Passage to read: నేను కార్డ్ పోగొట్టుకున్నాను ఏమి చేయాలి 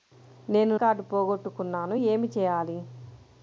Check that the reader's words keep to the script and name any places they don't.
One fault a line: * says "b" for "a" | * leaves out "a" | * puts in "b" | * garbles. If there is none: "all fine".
all fine